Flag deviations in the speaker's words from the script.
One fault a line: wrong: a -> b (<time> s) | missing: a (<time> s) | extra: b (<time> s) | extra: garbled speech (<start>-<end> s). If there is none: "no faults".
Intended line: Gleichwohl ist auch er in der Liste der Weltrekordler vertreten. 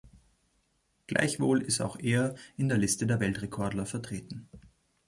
no faults